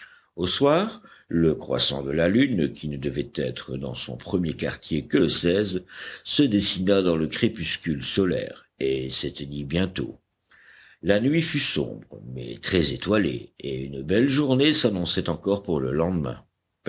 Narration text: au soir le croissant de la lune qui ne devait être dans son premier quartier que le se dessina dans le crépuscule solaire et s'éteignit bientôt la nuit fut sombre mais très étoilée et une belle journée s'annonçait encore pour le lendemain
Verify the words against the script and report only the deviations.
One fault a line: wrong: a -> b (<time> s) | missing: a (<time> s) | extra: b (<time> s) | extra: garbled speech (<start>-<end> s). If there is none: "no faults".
no faults